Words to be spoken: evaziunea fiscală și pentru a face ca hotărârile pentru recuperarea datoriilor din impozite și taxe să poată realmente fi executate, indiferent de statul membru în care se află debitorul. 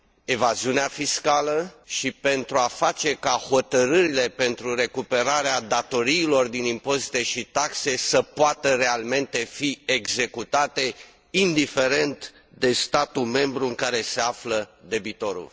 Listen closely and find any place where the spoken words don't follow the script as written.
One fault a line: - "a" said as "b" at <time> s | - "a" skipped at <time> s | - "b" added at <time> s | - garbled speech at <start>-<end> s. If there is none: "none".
none